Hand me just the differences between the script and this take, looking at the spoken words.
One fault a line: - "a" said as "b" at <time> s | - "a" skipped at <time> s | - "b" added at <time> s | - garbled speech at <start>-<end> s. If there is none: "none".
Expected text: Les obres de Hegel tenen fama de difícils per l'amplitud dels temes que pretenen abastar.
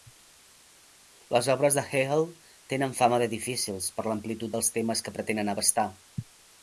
none